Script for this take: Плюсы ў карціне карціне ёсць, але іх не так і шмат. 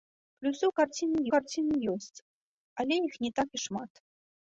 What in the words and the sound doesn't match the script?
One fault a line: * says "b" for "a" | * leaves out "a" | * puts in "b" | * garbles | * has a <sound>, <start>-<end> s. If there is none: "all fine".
all fine